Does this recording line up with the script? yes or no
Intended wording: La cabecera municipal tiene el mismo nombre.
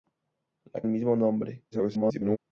no